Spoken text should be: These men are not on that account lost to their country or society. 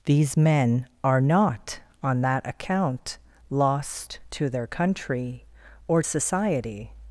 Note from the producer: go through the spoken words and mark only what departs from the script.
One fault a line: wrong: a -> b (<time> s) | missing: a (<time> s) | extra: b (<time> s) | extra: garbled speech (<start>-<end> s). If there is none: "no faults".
no faults